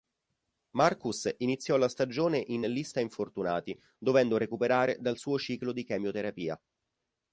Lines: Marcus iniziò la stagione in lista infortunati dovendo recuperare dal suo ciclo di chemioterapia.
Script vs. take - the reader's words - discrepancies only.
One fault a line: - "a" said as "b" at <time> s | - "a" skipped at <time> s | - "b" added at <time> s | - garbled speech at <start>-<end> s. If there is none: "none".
none